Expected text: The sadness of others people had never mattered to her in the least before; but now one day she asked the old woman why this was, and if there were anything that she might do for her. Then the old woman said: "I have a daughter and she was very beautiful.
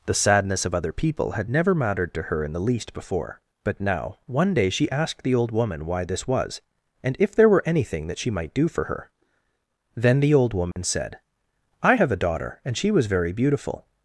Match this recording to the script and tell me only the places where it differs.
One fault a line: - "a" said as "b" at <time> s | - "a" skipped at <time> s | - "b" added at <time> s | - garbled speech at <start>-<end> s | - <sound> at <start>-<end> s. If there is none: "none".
- "others" said as "other" at 0.7 s
- dropout at 10.7-10.8 s